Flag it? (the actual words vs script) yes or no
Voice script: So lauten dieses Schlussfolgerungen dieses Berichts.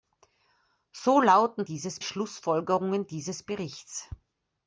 no